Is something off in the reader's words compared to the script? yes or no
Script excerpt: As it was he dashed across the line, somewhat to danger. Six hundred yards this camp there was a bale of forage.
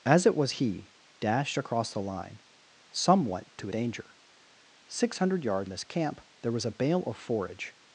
no